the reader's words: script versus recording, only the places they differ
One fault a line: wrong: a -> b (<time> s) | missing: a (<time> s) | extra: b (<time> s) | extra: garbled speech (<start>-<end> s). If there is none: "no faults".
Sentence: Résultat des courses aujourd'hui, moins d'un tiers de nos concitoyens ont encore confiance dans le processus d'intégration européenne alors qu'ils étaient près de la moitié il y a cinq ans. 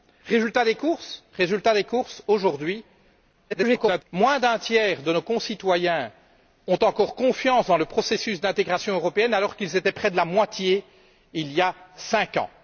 extra: garbled speech (3.5-4.0 s)